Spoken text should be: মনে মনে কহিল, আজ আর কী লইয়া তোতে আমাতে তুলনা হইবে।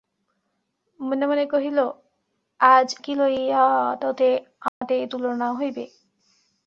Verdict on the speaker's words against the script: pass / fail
fail